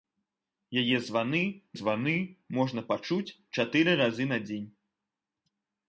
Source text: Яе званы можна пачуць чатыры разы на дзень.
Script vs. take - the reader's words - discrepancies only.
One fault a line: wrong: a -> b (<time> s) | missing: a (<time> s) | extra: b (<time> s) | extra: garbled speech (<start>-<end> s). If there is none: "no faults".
extra: званы (1.8 s)